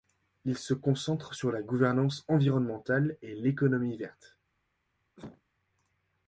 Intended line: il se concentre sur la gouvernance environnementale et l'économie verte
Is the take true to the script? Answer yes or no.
yes